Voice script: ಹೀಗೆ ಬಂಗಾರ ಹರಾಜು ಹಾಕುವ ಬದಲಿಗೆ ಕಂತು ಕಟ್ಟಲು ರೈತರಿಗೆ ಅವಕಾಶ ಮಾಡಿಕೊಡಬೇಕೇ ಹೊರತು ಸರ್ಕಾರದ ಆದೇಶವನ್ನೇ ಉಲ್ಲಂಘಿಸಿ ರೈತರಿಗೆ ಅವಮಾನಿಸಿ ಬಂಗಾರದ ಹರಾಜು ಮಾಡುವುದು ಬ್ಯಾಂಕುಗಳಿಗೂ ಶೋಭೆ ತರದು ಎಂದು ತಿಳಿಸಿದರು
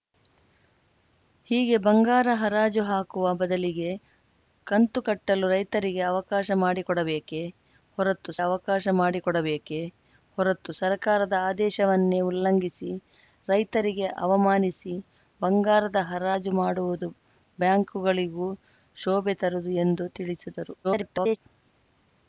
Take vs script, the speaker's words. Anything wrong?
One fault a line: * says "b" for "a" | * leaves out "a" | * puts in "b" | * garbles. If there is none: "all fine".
* puts in "ಅವಕಾಶ ಮಾಡಿಕೊಡಬೇಕೇ ಹೊರತು"
* garbles